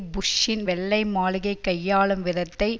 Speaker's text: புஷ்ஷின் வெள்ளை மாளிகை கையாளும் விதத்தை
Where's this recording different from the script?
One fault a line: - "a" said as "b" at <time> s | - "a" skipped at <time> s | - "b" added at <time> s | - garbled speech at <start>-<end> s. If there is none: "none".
none